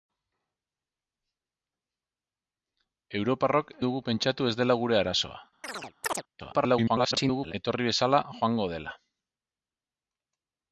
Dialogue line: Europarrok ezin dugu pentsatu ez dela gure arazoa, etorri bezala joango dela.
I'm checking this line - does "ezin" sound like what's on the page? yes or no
no